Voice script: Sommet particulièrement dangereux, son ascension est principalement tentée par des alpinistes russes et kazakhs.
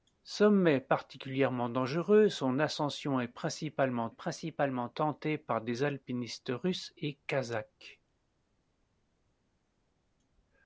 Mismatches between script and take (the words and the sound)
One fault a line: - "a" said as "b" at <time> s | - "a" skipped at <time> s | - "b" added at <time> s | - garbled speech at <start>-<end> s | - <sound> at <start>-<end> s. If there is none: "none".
- "principalement" added at 4.1 s